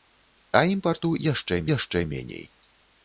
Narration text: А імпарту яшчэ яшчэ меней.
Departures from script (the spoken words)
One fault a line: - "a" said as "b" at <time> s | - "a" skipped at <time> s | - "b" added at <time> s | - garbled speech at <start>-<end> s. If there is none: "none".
none